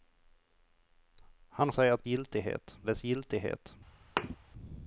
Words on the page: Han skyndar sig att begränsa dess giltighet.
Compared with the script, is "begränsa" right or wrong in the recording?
wrong